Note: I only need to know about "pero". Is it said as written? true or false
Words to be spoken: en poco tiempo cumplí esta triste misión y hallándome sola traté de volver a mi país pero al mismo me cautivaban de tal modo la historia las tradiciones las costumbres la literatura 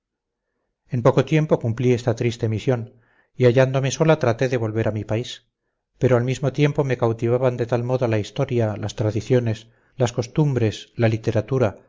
true